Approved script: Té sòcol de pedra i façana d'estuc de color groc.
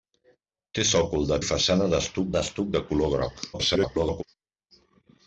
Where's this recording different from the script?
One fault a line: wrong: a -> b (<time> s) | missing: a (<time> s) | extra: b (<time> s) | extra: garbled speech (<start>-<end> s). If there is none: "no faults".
missing: pedra (1.4 s)
extra: d'estuc (2.4 s)
extra: garbled speech (3.5-4.2 s)